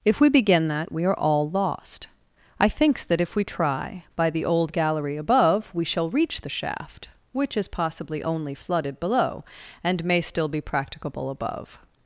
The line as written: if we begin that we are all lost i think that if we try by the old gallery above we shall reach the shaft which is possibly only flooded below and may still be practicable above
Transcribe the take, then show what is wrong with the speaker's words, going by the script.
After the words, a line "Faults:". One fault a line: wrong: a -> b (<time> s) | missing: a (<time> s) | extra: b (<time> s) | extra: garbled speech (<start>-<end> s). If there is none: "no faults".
if we begin that we are all lost i thinks that if we try by the old gallery above we shall reach the shaft which is possibly only flooded below and may still be practicable above
Faults:
wrong: think -> thinks (2.7 s)